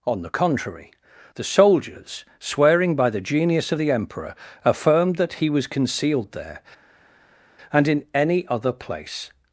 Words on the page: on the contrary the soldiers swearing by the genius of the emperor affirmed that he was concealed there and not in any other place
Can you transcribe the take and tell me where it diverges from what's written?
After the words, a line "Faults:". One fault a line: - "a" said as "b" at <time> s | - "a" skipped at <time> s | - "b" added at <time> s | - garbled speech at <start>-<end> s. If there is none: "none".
on the contrary the soldiers swearing by the genius of the emperor affirmed that he was concealed there and in any other place
Faults:
- "not" skipped at 7.9 s